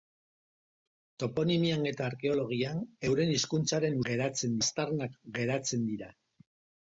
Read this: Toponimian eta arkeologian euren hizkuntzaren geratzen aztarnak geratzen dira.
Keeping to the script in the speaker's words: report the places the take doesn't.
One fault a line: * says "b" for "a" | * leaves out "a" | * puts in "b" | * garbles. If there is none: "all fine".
all fine